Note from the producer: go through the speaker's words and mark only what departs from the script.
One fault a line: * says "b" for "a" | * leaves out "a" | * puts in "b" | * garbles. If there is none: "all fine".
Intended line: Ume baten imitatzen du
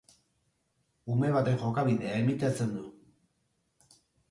* puts in "jokabidea"